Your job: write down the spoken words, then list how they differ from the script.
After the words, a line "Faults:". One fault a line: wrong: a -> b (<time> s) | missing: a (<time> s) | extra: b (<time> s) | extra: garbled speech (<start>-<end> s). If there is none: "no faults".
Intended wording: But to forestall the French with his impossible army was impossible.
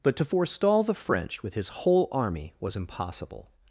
But to forestall the French with his whole army was impossible.
Faults:
wrong: impossible -> whole (1.7 s)